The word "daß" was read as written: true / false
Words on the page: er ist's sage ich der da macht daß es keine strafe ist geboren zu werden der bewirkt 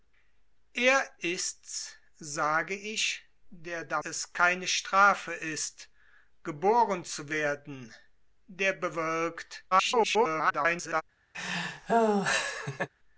false